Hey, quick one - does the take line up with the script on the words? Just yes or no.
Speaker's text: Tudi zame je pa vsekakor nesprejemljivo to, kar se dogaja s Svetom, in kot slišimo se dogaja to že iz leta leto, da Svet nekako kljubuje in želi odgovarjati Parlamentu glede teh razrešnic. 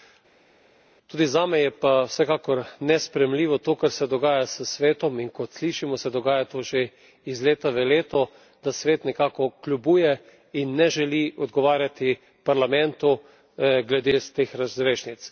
no